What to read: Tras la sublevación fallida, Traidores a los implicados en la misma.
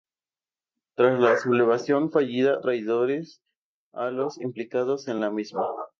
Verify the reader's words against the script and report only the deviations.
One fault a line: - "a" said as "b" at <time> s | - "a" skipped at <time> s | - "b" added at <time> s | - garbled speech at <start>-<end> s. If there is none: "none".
none